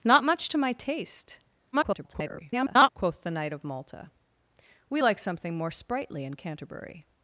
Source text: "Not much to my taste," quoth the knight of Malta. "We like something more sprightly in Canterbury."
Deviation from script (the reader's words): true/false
true